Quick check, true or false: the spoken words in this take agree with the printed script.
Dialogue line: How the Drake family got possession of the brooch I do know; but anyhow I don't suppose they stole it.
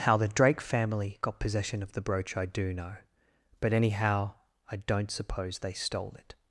true